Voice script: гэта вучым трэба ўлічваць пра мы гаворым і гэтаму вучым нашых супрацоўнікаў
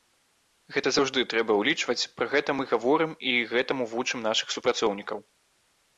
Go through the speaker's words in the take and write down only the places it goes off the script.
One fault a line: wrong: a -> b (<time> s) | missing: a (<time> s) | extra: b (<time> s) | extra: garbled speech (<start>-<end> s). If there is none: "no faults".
wrong: вучым -> заўжды (0.9 s)
extra: гэта (2.3 s)